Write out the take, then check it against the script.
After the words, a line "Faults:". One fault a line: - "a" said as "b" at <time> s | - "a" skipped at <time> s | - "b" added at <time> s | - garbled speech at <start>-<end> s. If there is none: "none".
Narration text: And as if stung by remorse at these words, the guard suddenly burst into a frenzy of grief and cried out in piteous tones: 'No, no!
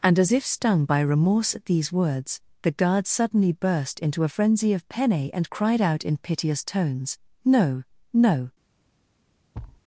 And as if stung by remorse at these words, the guard suddenly burst into a frenzy of penne and cried out in piteous tones: 'No, no!
Faults:
- "grief" said as "penne" at 4.9 s